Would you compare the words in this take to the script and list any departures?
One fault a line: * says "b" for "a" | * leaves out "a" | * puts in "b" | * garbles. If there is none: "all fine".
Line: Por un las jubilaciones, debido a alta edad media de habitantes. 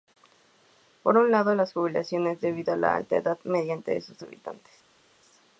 * puts in "lado"
* puts in "la"
* puts in "sus"